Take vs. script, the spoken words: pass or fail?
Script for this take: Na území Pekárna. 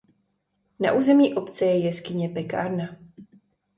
fail